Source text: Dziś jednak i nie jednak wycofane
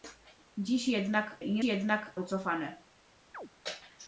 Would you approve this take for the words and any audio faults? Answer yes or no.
no